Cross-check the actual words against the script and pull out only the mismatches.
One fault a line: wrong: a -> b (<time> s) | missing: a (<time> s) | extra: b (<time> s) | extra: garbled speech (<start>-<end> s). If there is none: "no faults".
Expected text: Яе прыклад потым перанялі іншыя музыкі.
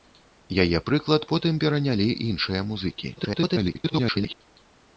extra: garbled speech (3.2-4.4 s)